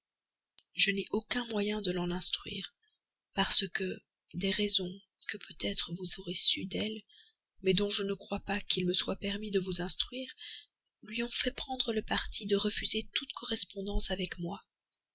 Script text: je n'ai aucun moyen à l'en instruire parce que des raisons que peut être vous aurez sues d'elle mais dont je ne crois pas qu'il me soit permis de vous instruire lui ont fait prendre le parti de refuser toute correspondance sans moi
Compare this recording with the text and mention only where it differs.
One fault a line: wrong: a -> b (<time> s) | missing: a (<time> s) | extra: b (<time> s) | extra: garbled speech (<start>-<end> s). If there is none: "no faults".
wrong: à -> de (1.8 s)
wrong: sans -> avec (14.1 s)